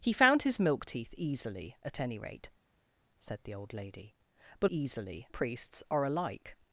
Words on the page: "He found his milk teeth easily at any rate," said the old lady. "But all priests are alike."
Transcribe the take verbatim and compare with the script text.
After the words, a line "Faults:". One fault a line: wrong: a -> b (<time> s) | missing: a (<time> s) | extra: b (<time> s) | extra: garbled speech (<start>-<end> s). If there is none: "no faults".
"He found his milk teeth easily at any rate," said the old lady. "But easily priests are alike."
Faults:
wrong: all -> easily (4.7 s)